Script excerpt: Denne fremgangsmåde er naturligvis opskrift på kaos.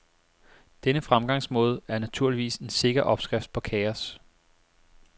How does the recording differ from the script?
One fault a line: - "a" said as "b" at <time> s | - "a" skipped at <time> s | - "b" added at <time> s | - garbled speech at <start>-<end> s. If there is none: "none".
- "en sikker" added at 2.5 s